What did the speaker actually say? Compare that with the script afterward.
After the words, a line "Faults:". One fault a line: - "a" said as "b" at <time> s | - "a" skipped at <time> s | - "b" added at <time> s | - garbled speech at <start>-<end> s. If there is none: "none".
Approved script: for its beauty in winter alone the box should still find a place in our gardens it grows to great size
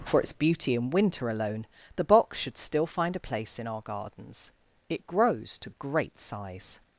for its beauty in winter alone the box should still find a place in our gardens it grows to great size
Faults:
none